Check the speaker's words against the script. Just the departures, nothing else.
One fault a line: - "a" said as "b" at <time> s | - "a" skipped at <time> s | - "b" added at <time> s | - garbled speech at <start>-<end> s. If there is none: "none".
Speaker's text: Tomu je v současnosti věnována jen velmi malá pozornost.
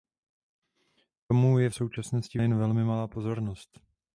- "věnována" skipped at 2.4 s